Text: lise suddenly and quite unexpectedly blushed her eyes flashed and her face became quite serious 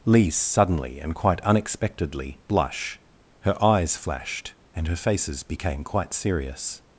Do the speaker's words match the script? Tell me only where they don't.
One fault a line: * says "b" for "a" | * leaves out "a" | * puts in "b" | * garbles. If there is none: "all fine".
* says "blush" for "blushed"
* says "faces" for "face"